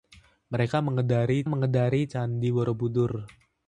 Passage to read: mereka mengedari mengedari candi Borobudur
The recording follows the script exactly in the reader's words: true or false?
true